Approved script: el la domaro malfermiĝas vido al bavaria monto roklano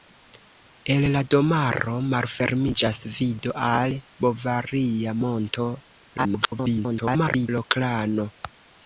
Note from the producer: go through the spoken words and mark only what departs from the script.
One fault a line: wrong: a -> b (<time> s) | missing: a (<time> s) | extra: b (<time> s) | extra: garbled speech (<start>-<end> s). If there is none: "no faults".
extra: garbled speech (6.2-7.5 s)